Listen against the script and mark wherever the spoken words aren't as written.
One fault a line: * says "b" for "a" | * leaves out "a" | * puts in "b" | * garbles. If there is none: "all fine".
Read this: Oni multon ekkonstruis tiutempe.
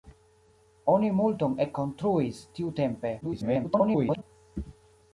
* garbles